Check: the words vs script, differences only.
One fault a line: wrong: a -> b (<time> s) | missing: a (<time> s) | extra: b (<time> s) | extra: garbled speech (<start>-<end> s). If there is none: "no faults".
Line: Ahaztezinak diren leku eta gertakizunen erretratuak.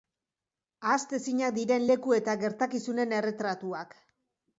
no faults